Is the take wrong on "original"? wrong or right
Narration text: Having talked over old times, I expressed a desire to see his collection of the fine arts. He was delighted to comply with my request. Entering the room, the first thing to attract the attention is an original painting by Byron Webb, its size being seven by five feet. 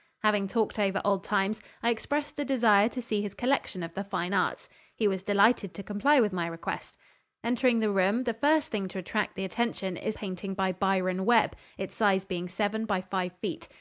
wrong